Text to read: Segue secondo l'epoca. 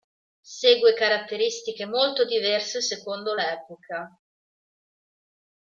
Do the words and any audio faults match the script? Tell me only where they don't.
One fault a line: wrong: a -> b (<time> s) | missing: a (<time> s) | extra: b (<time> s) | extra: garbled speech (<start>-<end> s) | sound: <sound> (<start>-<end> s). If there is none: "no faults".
extra: caratteristiche molto diverse (0.9 s)